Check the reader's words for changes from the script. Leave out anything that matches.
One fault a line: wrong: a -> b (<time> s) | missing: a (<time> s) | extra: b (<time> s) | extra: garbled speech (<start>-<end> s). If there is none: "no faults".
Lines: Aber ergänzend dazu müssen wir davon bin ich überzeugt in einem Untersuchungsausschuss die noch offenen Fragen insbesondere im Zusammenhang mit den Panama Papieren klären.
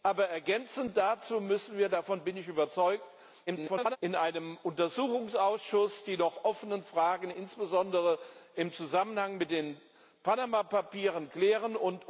extra: garbled speech (3.5-4.0 s)